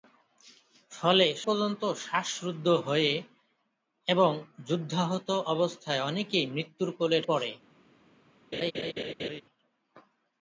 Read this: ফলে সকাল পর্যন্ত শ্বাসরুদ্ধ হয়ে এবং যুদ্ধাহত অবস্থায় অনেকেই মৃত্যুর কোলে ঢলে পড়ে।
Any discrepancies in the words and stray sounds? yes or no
yes